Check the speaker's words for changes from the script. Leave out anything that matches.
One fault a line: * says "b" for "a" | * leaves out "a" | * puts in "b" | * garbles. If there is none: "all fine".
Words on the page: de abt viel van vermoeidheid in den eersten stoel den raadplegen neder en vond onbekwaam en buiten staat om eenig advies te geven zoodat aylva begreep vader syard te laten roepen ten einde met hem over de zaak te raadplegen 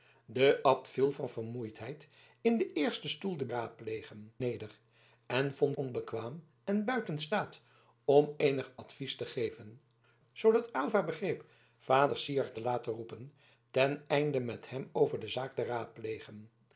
all fine